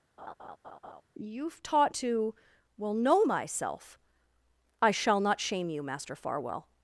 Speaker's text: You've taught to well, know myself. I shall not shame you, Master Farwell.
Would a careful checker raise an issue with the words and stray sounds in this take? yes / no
yes